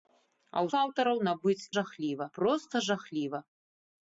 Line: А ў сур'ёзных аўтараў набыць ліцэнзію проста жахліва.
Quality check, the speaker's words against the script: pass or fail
fail